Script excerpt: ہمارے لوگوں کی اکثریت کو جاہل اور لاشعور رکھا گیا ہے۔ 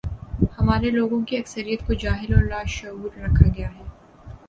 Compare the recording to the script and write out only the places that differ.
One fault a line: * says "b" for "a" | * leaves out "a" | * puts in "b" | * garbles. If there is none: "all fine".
all fine